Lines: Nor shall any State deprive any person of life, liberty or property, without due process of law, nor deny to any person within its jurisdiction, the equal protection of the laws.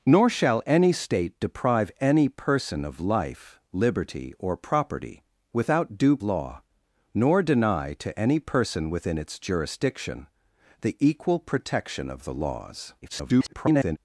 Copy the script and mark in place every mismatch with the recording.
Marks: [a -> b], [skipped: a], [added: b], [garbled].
Nor shall any State deprive any person of life, liberty or property, without due [skipped: process of] law, nor deny to any person within its jurisdiction, the equal protection of the laws. [garbled]